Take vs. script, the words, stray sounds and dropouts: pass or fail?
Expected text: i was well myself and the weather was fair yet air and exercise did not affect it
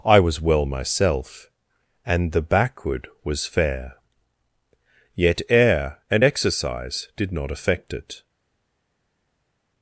fail